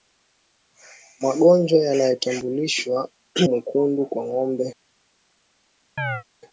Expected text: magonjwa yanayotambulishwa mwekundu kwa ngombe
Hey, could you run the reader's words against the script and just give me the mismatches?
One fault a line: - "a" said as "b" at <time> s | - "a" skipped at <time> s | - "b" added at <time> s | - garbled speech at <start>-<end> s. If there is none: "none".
none